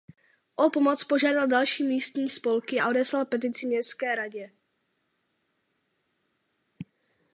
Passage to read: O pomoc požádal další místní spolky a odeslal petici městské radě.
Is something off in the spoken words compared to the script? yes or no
no